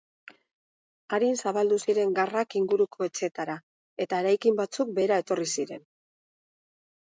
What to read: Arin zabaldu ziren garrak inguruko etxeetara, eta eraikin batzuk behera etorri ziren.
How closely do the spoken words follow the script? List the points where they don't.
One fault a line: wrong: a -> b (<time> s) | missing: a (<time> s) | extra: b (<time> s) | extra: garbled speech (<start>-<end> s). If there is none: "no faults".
no faults